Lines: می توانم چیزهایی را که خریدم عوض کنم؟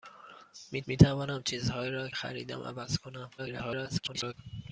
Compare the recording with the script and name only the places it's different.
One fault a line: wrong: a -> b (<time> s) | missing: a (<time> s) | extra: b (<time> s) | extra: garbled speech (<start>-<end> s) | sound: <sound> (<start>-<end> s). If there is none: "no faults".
extra: می (0.9 s)
missing: که (2.1 s)
extra: garbled speech (3.4-4.3 s)